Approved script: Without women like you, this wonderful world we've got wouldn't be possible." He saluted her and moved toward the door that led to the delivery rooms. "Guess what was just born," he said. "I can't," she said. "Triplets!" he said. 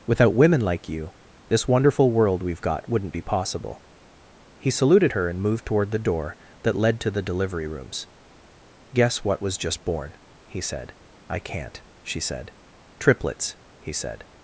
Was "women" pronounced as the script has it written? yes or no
yes